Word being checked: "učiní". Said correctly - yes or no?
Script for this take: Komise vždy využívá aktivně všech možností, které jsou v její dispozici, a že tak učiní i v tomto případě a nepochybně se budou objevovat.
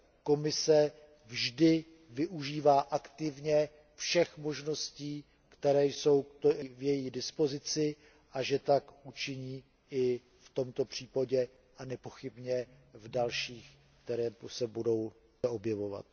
yes